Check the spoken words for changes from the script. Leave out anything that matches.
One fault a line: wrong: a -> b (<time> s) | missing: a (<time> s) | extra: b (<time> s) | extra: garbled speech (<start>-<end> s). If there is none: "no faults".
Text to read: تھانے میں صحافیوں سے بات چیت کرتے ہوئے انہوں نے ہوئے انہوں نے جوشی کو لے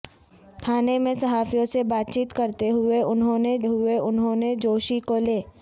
no faults